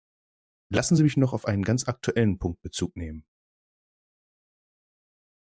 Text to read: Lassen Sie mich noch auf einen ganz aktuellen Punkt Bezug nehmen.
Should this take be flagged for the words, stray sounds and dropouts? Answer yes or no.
no